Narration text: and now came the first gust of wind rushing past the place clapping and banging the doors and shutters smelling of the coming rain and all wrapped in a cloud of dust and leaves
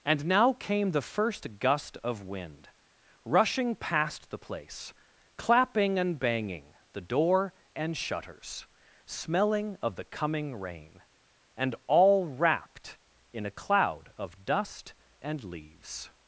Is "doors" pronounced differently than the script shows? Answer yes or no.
yes